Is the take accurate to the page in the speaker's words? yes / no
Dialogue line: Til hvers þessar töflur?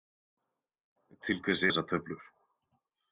yes